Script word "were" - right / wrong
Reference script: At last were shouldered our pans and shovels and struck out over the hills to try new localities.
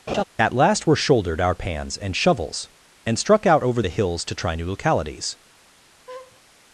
right